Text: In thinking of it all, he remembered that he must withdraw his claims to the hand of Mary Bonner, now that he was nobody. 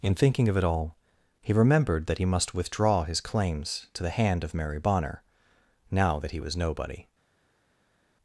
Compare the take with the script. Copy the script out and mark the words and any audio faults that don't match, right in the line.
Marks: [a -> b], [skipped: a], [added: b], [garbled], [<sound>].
In thinking of it all, he remembered that he must withdraw his claims to the hand of Mary Bonner, now that he was nobody.